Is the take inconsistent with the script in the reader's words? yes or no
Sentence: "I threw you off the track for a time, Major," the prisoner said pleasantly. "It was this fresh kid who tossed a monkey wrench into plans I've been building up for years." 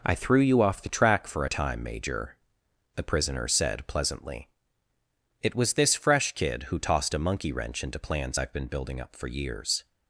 no